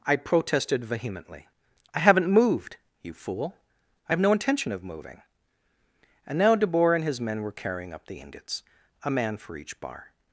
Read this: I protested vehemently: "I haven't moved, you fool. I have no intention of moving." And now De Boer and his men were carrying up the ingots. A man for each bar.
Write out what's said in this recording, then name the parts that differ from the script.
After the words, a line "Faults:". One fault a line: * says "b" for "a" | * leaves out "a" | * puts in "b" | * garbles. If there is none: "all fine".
I protested vehemently: "I haven't moved, you fool. I have no intention of moving." And now De Boer and his men were carrying up the ingots. A man for each bar.
Faults:
all fine